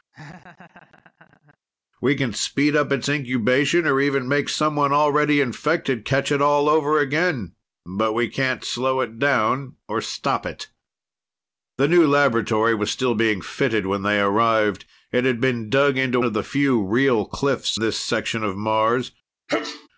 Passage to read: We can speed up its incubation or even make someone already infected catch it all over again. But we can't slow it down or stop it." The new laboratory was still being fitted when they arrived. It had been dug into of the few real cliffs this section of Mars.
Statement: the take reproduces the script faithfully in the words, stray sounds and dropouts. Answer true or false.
false